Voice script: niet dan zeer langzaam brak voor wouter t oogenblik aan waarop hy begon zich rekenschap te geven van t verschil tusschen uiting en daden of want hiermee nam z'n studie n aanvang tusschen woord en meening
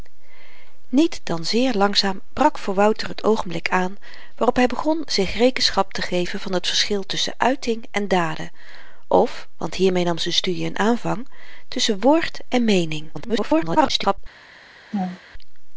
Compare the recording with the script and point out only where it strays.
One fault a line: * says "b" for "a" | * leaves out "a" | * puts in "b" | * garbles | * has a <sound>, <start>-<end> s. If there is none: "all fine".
* garbles
* has a laugh, 14.9-15.2 s